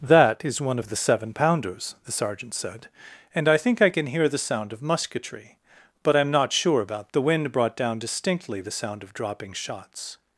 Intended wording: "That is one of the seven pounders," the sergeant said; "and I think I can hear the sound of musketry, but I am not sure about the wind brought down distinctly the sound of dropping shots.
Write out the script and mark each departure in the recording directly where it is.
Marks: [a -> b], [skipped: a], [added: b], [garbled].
"That is one of the seven pounders," the sergeant said; "and I think I can hear the sound of musketry, but I am not sure about the wind brought down distinctly the sound of dropping shots.